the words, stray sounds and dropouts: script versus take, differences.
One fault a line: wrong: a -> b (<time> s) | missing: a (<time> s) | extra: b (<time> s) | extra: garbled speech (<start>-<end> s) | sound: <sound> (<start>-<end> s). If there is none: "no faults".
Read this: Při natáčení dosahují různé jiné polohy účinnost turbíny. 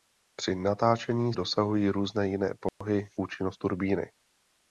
sound: dropout (2.7-2.8 s)